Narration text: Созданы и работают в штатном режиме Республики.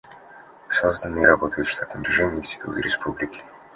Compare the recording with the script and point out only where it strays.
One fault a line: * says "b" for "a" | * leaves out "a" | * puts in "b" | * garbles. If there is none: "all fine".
* puts in "институты"